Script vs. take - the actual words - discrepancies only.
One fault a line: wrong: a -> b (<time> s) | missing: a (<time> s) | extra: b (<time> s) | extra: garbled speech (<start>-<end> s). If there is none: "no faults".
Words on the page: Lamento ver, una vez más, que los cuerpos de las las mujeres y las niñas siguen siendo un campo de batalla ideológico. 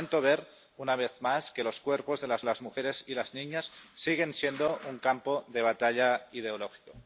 no faults